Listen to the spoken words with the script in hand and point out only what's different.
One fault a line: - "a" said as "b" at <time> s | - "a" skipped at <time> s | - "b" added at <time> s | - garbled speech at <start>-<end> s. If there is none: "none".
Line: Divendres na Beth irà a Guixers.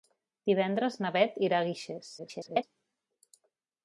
- garbled speech at 2.2-2.6 s